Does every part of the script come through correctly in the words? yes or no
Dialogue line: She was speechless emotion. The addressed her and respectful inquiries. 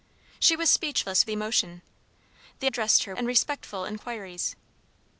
yes